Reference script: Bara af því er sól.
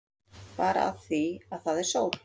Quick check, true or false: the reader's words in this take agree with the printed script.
false